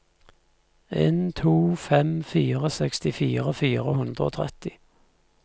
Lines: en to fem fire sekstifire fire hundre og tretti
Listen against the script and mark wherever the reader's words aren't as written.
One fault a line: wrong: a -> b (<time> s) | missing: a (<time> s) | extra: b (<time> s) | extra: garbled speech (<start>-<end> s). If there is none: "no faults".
no faults